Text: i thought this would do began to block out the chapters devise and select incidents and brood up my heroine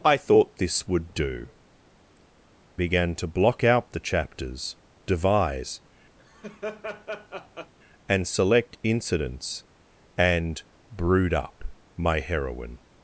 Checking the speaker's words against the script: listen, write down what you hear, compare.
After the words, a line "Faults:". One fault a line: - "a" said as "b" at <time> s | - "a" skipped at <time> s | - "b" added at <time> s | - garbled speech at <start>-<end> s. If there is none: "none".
i thought this would do began to block out the chapters devise and select incidents and brood up my heroine
Faults:
none